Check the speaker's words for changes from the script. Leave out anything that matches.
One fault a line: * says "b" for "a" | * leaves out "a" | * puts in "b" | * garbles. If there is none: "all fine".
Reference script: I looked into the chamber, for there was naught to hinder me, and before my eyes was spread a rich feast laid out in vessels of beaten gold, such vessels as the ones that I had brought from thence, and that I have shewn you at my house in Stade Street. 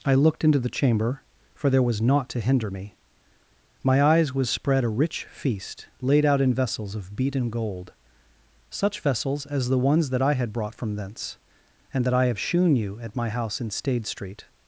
* leaves out "and before"